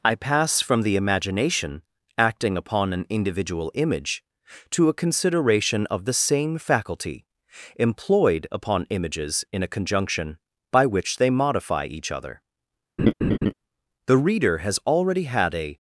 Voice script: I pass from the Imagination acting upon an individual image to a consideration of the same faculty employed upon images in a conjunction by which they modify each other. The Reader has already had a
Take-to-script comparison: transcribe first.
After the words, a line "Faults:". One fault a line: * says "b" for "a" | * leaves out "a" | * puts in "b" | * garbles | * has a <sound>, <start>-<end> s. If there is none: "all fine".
I pass from the Imagination acting upon an individual image to a consideration of the same faculty employed upon images in a conjunction by which they modify each other. The Reader has already had a
Faults:
* has a laugh, 13.0-13.5 s